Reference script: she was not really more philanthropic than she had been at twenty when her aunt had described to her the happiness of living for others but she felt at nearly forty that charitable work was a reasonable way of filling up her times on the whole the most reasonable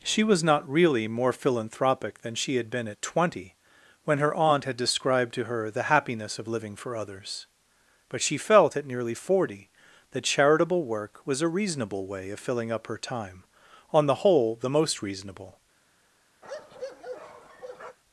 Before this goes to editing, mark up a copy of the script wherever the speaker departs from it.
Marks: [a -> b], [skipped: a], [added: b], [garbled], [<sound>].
she was not really more philanthropic than she had been at twenty when her aunt had described to her the happiness of living for others but she felt at nearly forty that charitable work was a reasonable way of filling up her [times -> time] on the whole the most reasonable [bark]